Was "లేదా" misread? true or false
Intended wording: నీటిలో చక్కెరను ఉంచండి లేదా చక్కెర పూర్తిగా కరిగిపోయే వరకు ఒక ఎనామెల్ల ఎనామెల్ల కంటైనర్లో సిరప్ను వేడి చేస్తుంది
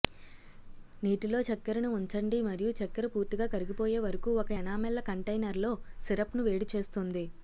true